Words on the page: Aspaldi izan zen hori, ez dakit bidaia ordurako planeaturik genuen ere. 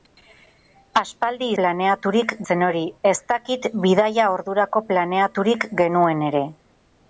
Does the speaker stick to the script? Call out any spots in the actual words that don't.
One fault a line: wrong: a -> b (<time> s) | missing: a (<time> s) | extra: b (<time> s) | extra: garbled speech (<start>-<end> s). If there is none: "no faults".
wrong: izan -> planeaturik (1.6 s)